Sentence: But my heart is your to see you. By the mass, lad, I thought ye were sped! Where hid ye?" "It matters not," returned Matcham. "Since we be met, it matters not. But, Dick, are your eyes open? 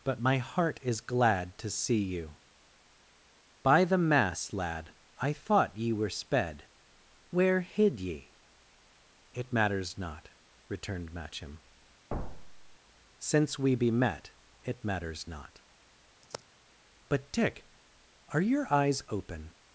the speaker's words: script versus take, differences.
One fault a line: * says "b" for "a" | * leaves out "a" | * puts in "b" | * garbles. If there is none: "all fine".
* says "glad" for "your"